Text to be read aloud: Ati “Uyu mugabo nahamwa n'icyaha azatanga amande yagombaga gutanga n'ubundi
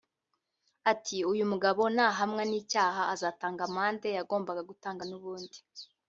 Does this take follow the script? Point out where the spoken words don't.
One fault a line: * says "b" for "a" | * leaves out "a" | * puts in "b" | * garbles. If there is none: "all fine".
all fine